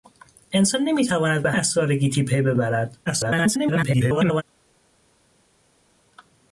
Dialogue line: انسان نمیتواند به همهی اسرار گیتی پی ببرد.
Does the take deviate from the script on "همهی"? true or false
true